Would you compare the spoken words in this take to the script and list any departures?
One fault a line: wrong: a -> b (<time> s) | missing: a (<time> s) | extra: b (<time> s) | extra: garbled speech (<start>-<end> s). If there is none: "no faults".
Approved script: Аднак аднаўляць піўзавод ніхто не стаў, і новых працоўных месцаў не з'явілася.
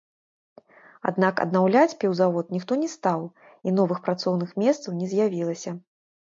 no faults